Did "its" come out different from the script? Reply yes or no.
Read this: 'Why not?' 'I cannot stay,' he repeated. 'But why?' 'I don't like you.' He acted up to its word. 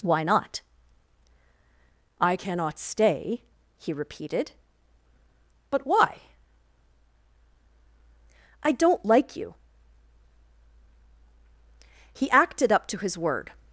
yes